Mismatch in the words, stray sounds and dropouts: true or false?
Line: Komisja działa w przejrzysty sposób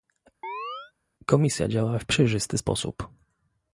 true